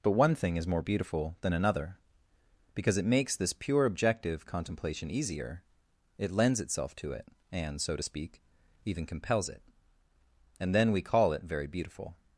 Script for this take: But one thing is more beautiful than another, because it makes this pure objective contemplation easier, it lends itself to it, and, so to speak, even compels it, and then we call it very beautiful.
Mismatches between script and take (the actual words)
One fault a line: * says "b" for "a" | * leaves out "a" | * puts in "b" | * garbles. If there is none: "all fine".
all fine